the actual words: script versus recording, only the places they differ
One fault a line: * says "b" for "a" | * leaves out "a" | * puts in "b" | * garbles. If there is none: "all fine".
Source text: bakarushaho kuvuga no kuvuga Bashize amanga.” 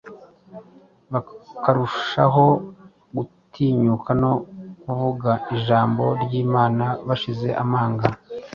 * says "gutinyuka" for "kuvuga"
* puts in "Ijambo ry'Imana"